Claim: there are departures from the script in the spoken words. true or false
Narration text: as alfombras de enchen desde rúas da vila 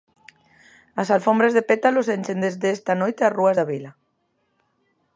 true